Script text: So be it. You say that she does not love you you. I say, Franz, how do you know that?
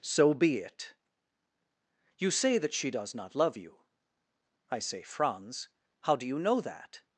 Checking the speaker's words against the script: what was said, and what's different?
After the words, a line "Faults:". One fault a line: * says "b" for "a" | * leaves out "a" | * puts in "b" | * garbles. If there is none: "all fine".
So be it. You say that she does not love you. I say, Franz, how do you know that?
Faults:
* leaves out "you"